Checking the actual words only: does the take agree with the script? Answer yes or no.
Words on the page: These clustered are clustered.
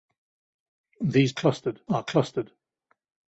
yes